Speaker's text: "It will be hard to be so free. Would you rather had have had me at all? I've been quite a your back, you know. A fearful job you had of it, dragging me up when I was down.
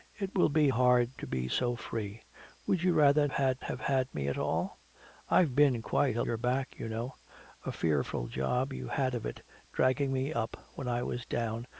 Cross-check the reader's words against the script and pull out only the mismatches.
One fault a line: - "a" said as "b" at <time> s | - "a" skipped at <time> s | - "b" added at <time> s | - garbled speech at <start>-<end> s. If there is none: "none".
none